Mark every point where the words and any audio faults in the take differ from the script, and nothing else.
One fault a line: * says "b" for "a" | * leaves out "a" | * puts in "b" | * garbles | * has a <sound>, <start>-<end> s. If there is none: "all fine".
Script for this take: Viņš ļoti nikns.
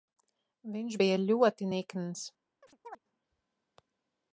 * puts in "bija"
* has a chirp, 2.6-3.0 s